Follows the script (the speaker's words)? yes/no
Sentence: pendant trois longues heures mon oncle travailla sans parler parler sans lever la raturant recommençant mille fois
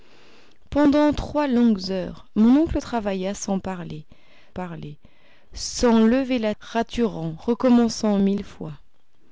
yes